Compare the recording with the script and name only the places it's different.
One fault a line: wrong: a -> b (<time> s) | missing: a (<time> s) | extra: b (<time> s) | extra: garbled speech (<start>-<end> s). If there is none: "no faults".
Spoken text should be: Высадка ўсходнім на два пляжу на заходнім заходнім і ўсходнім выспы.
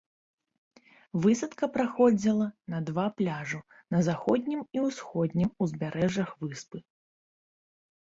wrong: ўсходнім -> праходзіла (1.8 s)
missing: заходнім (4.6 s)
extra: узбярэжжах (5.7 s)